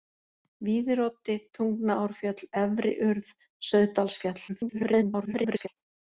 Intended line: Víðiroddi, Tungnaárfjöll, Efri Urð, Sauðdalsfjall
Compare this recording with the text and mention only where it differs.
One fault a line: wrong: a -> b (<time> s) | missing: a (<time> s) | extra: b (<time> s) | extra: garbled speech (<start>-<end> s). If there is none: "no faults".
extra: garbled speech (4.5-5.7 s)